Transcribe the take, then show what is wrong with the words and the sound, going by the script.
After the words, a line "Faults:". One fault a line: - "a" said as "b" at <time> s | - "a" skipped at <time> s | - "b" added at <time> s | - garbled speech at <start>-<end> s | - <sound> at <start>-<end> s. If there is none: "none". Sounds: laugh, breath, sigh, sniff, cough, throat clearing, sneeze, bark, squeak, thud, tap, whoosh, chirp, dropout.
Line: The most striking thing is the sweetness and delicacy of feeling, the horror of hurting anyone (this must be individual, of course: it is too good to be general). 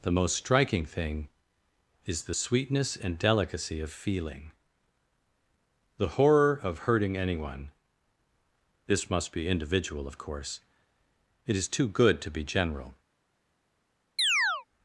The most striking thing is the sweetness and delicacy of feeling, the horror of hurting anyone (this must be individual, of course: it is too good to be general).
Faults:
- chirp at 14.2-14.7 s